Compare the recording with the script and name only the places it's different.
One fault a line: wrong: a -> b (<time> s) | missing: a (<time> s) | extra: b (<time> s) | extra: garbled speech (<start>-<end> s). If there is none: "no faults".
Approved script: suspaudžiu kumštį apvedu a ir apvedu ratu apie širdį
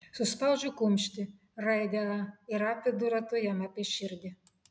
wrong: apvedu -> raidę (1.7 s)
extra: jam (3.5 s)